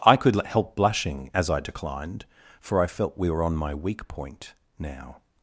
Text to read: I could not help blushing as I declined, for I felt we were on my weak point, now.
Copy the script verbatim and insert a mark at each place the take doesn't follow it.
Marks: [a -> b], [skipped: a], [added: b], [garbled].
I could [skipped: not] help blushing as I declined, for I felt we were on my weak point, now.